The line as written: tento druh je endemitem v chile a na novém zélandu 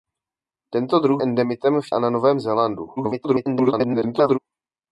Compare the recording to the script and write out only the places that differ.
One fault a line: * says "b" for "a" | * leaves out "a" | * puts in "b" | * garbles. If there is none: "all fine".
* leaves out "je"
* leaves out "chile"
* garbles